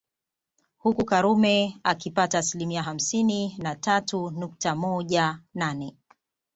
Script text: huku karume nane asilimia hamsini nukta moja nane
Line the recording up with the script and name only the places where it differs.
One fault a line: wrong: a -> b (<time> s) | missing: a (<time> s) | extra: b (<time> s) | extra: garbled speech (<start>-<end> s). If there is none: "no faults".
wrong: nane -> akipata (1.8 s)
extra: na tatu (3.6 s)